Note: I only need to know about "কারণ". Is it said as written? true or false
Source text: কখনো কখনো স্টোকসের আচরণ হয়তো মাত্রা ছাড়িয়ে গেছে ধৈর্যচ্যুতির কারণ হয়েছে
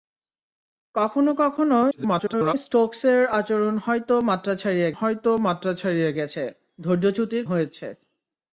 false